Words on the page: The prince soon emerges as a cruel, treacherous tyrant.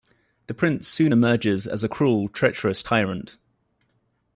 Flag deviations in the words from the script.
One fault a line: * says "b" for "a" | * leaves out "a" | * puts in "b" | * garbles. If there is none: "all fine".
all fine